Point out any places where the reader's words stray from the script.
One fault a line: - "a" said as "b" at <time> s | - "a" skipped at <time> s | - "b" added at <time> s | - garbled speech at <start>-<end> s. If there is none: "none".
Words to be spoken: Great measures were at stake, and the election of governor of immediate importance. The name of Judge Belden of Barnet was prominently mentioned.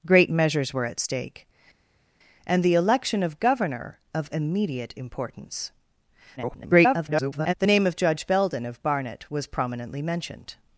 - garbled speech at 6.4-7.5 s